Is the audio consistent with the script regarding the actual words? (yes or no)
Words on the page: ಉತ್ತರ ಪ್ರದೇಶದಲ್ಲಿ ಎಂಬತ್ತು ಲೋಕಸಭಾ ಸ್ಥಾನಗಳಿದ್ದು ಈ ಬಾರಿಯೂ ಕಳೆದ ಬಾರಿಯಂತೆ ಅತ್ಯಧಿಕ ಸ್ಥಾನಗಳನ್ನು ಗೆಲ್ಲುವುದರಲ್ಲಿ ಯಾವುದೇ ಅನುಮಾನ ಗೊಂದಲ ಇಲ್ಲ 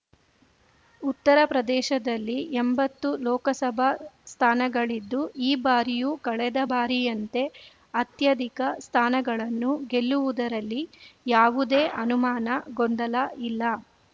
yes